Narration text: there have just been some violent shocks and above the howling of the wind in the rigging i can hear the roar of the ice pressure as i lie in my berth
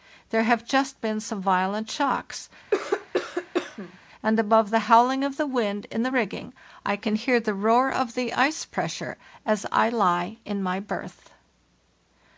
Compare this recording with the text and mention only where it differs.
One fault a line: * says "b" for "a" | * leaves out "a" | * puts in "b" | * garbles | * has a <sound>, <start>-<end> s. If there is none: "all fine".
* has a cough, 2.7-4.0 s